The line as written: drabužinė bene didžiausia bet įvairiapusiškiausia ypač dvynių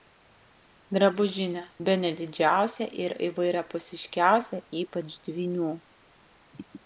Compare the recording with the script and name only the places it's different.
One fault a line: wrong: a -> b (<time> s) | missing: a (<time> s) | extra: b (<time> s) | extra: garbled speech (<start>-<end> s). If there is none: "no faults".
wrong: bet -> ir (3.0 s)